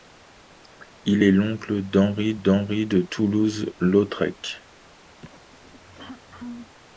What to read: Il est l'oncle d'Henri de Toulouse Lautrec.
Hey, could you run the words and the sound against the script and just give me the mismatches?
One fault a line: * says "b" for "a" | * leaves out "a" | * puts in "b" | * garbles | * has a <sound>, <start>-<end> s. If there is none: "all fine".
* puts in "d'Henri"
* has a throat clearing, 5.2-6.8 s